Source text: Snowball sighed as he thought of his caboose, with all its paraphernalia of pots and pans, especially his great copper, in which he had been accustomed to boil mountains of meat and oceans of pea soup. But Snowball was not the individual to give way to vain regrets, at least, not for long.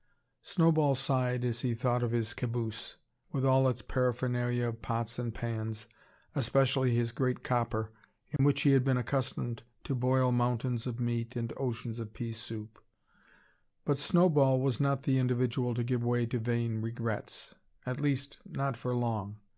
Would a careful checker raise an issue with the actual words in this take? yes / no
no